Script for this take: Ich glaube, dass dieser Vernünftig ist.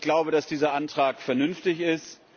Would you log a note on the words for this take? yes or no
yes